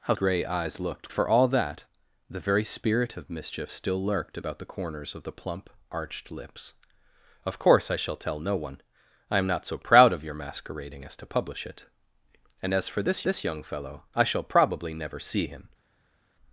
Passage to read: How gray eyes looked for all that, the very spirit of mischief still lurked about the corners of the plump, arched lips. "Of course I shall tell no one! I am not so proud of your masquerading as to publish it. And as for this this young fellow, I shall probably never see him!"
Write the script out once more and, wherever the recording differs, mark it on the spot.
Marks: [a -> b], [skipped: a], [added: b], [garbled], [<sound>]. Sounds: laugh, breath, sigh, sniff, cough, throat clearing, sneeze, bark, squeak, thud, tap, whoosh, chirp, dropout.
How gray eyes looked for all that, the very spirit of mischief still lurked about the corners of the plump, arched lips. "Of course I shall tell no one! I am not so proud of your masquerading as to publish it. And as for this this young fellow, I shall probably never see him!"